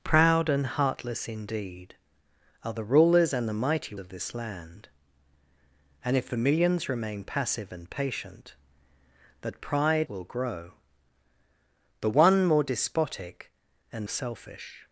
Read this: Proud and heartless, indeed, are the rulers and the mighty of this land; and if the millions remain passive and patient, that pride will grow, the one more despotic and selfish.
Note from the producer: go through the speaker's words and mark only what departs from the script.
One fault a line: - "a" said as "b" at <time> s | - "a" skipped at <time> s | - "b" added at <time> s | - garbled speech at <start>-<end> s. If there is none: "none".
none